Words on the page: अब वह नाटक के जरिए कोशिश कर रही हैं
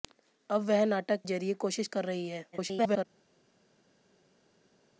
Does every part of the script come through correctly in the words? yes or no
no